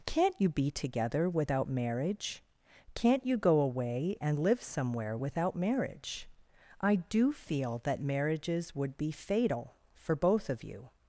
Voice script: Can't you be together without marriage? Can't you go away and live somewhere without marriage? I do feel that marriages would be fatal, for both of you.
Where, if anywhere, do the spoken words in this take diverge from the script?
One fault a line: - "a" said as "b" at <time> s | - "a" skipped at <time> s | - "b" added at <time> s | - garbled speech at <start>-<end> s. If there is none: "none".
none